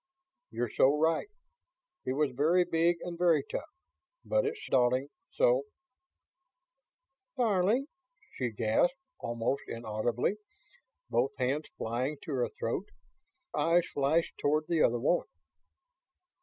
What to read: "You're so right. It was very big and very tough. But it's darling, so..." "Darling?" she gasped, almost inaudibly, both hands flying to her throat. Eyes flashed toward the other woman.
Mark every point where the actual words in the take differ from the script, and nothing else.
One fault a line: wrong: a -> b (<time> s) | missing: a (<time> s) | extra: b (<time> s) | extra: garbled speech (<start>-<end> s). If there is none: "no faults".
no faults